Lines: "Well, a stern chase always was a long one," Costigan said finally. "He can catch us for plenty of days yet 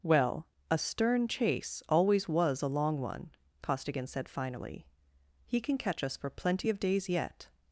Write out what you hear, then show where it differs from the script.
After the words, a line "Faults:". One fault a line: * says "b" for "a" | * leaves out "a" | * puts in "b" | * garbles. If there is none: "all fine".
"Well, a stern chase always was a long one," Costigan said finally. "He can catch us for plenty of days yet
Faults:
all fine